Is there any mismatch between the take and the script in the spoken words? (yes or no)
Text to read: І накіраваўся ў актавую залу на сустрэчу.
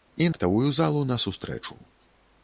yes